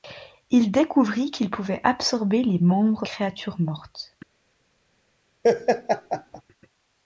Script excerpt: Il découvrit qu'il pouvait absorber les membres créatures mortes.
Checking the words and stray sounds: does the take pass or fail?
fail